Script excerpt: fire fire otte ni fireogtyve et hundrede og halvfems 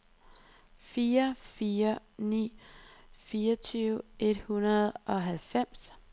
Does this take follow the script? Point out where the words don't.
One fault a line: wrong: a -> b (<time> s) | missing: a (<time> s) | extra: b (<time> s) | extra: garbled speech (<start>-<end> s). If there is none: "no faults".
missing: otte (2.0 s)